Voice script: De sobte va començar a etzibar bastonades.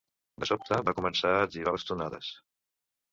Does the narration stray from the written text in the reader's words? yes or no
no